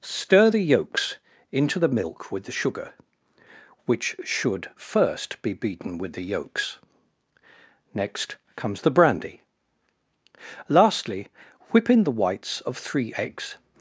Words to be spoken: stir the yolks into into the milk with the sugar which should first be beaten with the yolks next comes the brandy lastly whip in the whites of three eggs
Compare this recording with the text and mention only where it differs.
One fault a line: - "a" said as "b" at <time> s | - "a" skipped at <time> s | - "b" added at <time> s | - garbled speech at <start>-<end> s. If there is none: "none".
- "into" skipped at 1.8 s